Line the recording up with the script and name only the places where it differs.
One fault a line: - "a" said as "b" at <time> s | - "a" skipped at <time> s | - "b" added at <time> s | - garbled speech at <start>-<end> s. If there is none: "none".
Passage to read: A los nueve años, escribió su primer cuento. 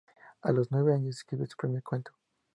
none